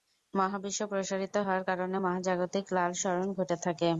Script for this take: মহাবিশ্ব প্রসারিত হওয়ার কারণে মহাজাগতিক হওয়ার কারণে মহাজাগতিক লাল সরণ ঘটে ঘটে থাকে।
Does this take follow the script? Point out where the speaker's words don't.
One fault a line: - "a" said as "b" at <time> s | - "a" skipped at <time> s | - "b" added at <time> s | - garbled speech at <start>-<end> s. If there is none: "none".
- "হওয়ার কারণে মহাজাগতিক" skipped at 2.6 s
- "ঘটে" skipped at 3.6 s